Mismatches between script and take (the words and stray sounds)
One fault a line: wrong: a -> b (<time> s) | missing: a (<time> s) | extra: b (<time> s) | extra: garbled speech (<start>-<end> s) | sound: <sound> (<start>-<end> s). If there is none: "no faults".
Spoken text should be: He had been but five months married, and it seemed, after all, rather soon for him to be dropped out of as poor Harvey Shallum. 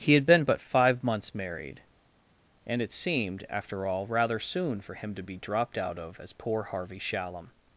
no faults